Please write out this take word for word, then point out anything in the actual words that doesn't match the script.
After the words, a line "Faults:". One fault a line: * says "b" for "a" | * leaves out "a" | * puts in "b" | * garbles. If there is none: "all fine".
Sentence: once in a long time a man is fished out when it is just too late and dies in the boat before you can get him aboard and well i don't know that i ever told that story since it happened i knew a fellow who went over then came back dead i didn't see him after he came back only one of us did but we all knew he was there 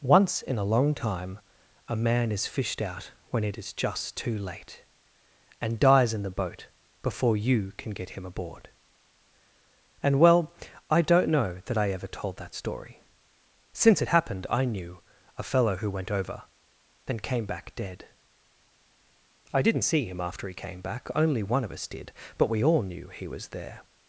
once in a long time a man is fished out when it is just too late and dies in the boat before you can get him aboard and well i don't know that i ever told that story since it happened i knew a fellow who went over then came back dead i didn't see him after he came back only one of us did but we all knew he was there
Faults:
all fine